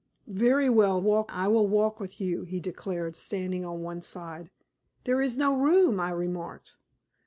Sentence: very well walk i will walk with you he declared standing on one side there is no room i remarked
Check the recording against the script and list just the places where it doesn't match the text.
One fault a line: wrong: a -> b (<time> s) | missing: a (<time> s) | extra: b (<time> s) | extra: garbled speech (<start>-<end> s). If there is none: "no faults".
no faults